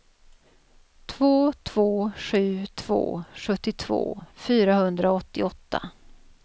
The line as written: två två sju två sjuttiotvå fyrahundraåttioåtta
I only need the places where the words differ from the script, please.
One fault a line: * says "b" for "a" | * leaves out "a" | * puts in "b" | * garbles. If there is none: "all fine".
all fine